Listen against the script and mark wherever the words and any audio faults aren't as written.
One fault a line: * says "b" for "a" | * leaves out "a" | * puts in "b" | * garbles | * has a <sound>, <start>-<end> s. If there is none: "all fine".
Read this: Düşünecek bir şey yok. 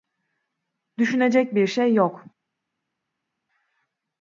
all fine